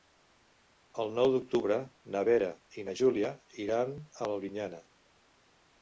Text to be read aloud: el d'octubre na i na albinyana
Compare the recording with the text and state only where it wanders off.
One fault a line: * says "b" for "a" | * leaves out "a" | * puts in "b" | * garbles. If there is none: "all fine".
* puts in "nou"
* puts in "vera"
* puts in "júlia iran a"